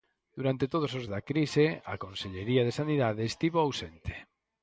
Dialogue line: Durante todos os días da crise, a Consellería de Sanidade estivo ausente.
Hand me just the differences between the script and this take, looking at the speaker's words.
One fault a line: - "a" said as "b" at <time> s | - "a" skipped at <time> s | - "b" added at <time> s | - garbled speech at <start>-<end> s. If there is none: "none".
- "días" skipped at 1.1 s